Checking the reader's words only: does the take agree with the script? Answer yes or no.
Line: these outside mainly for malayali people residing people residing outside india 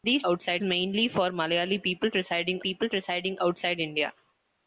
yes